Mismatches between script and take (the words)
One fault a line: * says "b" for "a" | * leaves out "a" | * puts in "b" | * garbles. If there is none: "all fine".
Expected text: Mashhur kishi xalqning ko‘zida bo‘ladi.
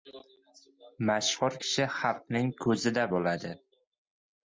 all fine